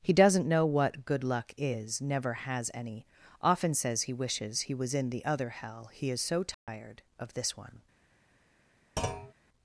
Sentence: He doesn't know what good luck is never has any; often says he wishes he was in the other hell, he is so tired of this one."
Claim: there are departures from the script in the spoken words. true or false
false